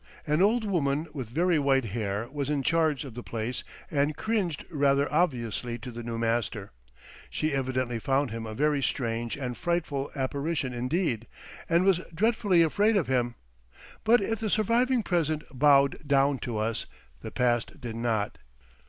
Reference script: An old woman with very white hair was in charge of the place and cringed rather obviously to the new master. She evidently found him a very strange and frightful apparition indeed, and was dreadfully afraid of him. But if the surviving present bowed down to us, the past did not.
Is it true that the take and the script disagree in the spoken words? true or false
false